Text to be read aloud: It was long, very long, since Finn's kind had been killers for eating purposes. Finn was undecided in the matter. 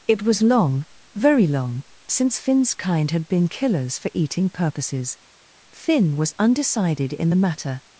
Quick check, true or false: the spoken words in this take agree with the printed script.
true